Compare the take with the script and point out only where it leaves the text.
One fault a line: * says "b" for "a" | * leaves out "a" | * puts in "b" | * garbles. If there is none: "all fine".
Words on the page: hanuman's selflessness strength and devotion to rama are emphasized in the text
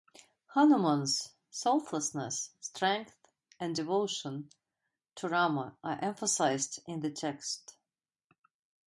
all fine